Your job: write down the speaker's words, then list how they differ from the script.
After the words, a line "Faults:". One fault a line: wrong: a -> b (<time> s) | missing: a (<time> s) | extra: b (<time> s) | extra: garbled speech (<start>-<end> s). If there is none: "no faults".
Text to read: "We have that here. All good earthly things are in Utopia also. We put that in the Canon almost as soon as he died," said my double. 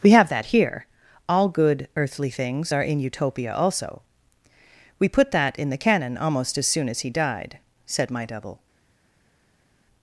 "We have that here. All good earthly things are in Utopia also. We put that in the Canon almost as soon as he died," said my double.
Faults:
no faults